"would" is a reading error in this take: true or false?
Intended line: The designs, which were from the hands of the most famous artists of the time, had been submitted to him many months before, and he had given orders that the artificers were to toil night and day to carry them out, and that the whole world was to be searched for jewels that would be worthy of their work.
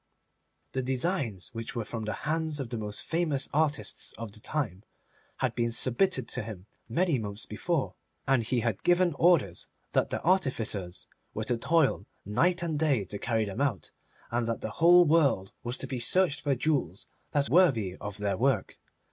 true